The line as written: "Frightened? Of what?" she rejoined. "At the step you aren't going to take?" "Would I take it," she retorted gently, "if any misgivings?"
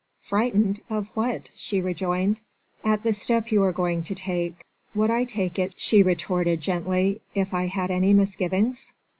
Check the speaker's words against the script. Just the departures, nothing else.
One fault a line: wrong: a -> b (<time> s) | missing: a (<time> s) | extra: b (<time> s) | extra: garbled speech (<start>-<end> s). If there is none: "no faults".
wrong: aren't -> are (3.6 s)
extra: I had (7.5 s)